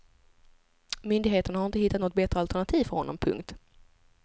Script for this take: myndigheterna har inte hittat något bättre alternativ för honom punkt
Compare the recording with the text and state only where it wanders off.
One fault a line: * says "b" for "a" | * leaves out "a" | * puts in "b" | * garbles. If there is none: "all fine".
all fine